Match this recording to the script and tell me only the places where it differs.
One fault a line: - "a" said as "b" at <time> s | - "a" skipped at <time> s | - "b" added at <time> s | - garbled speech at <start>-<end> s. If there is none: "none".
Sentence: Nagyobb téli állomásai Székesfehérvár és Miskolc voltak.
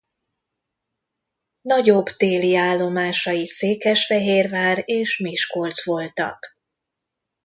none